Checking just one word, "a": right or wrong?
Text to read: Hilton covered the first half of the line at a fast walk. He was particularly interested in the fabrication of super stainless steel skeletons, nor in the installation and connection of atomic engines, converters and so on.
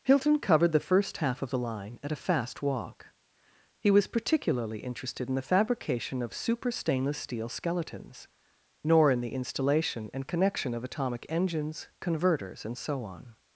right